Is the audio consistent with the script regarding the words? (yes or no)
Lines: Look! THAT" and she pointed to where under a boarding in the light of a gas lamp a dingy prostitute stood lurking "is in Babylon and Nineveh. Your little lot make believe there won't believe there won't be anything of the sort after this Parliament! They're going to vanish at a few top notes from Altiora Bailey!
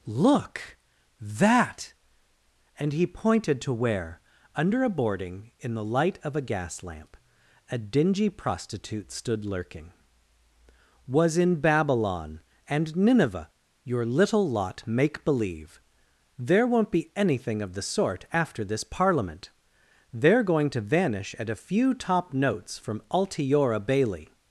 no